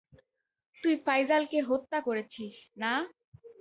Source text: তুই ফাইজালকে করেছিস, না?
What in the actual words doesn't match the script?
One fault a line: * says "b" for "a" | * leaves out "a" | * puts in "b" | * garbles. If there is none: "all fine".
* puts in "হত্যা"